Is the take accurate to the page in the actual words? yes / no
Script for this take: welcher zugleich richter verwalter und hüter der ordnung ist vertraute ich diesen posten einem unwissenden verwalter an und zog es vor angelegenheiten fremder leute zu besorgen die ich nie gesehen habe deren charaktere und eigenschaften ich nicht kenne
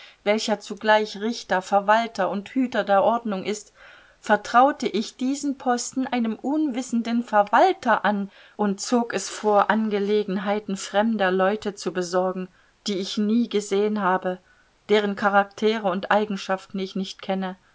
yes